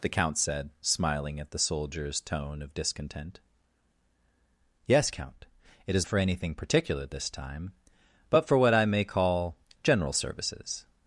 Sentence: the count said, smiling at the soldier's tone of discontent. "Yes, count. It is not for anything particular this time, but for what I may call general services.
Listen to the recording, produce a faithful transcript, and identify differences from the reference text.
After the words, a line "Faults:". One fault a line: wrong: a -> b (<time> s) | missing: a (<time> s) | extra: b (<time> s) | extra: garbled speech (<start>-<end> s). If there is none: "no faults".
the count said, smiling at the soldier's tone of discontent. "Yes, count. It is for anything particular this time, but for what I may call general services.
Faults:
missing: not (6.1 s)